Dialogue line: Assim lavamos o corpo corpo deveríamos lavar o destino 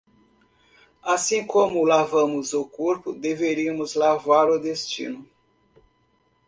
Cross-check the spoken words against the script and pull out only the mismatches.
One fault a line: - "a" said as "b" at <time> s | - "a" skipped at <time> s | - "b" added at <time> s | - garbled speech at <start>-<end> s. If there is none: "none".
- "como" added at 1.4 s
- "corpo" skipped at 3.1 s